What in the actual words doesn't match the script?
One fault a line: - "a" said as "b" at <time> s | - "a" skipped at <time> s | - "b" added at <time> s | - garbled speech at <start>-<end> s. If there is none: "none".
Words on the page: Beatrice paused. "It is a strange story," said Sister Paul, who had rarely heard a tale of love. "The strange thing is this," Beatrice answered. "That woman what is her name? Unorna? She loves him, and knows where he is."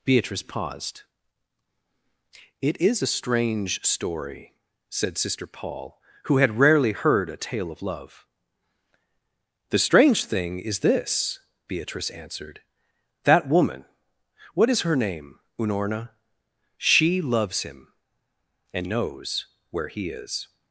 none